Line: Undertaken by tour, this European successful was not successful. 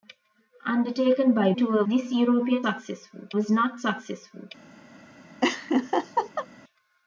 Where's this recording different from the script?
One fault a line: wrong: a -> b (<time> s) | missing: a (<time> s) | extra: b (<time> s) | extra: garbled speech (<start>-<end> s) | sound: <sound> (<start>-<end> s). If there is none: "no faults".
sound: laugh (5.4-6.5 s)